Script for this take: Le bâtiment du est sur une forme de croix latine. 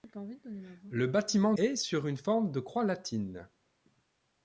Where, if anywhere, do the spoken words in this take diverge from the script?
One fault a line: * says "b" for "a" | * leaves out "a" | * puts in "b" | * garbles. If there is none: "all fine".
* leaves out "du"